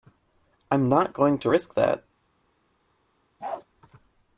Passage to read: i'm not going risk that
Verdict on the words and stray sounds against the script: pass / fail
fail